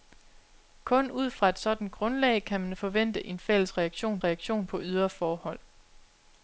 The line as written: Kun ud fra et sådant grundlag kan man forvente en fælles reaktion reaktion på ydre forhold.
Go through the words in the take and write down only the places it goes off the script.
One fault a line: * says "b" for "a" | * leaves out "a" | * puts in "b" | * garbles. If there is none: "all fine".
all fine